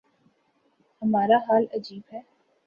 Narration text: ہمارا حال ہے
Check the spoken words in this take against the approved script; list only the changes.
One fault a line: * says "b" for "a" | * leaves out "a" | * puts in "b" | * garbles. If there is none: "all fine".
* puts in "عجیب"